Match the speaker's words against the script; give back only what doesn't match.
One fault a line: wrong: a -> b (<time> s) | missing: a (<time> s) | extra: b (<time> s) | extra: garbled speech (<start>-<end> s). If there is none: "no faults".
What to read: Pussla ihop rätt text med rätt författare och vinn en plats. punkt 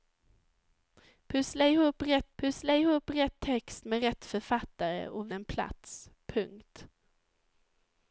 extra: pussla ihop rätt (2.4 s)
missing: vinn (5.3 s)